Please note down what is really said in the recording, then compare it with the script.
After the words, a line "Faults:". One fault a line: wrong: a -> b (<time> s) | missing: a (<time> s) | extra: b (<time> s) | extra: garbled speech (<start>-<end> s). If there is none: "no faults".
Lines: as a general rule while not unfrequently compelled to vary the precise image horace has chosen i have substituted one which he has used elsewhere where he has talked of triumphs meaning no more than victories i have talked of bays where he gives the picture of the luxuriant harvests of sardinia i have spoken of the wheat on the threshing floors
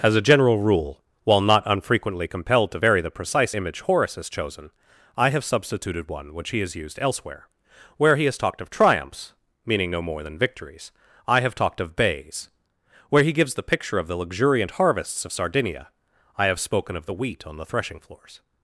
as a general rule while not unfrequently compelled to vary the precise image horace has chosen i have substituted one which he has used elsewhere where he has talked of triumphs meaning no more than victories i have talked of bays where he gives the picture of the luxuriant harvests of sardinia i have spoken of the wheat on the threshing floors
Faults:
no faults